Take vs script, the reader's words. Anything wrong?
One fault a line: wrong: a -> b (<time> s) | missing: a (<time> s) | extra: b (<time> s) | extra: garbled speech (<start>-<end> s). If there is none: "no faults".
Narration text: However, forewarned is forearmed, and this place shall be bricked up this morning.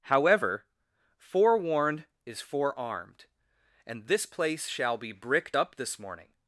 no faults